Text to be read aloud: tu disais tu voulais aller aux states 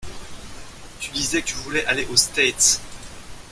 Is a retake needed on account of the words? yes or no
no